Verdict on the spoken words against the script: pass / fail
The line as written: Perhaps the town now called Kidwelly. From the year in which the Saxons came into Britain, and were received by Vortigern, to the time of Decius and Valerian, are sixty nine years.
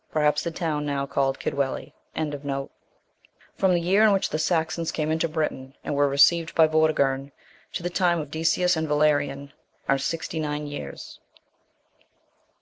pass